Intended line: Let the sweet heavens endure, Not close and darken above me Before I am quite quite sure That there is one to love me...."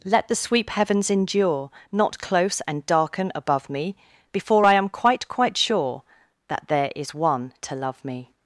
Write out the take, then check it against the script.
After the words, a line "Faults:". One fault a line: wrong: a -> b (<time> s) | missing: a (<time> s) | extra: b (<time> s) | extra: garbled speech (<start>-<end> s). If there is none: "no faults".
Let the sweep heavens endure, Not close and darken above me Before I am quite quite sure That there is one to love me...."
Faults:
wrong: sweet -> sweep (0.3 s)